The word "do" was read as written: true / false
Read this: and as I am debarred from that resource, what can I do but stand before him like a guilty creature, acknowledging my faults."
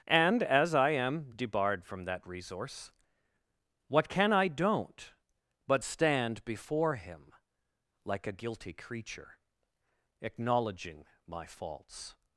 false